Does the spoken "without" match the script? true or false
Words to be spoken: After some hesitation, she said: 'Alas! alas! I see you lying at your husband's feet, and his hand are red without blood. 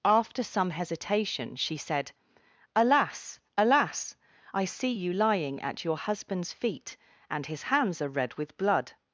false